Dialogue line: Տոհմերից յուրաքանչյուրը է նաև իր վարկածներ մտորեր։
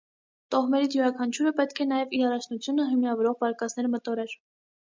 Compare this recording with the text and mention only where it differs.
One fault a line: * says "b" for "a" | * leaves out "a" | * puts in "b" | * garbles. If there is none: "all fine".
* puts in "պետք"
* puts in "առաջնությունը հիմնավորող"